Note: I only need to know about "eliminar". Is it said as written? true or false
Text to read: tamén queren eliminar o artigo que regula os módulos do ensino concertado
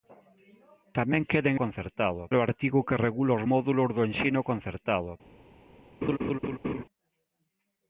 false